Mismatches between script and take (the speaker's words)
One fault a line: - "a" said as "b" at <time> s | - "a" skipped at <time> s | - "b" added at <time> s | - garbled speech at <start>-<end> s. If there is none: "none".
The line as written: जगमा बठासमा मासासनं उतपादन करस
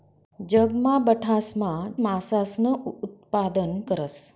none